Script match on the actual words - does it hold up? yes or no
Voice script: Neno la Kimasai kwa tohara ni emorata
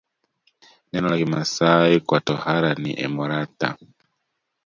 yes